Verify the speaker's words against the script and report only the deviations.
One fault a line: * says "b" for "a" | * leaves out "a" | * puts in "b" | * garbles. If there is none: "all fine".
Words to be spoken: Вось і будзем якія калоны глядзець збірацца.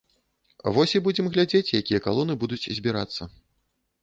* puts in "глядзець"
* says "будуць" for "глядзець"